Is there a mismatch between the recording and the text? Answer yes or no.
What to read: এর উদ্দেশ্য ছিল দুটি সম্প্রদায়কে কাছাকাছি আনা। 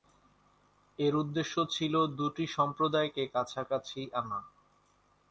no